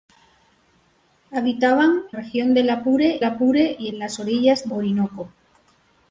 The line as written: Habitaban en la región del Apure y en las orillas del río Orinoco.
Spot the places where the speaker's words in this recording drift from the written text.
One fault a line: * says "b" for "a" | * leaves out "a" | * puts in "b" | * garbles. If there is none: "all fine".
* leaves out "en la"
* puts in "Apure"
* leaves out "del río"